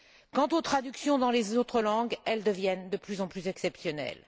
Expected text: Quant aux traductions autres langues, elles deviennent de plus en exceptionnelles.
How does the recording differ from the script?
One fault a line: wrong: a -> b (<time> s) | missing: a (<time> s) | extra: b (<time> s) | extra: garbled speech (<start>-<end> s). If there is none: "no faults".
extra: dans les (1.2 s)
extra: plus (3.3 s)